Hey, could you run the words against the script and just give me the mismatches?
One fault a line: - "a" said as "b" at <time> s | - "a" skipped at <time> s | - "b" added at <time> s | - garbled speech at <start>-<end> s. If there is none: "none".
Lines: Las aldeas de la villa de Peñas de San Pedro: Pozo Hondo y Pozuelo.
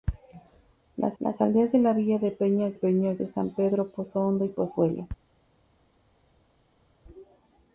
- "las" added at 1.2 s
- "Peñas" added at 2.7 s